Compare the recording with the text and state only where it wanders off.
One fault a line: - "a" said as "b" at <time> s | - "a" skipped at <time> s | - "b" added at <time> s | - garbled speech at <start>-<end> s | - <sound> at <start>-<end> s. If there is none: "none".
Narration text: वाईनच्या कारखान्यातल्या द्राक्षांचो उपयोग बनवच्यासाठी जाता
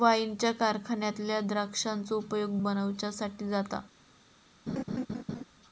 - laugh at 4.7-5.4 s